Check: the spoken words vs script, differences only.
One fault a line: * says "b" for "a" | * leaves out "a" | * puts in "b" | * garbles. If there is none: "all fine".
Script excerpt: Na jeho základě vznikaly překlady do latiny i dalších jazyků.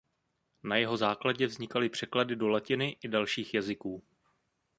all fine